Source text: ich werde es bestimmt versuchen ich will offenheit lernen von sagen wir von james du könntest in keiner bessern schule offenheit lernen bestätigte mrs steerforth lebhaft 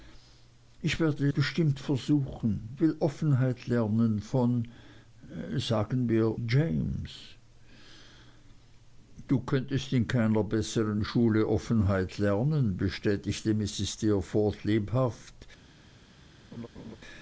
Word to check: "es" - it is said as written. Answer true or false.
false